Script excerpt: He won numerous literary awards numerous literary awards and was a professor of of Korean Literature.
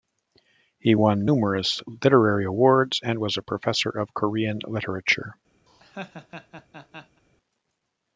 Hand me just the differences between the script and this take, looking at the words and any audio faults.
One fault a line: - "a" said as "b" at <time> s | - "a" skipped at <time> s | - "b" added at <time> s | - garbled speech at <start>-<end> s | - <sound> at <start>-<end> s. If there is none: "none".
- "numerous literary awards" skipped at 3.0 s
- "of" skipped at 4.1 s
- laugh at 5.7-7.2 s